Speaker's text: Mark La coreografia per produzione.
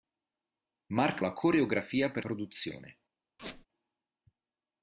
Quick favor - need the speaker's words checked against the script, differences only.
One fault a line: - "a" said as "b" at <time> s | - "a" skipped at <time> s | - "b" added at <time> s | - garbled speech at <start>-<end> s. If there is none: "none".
none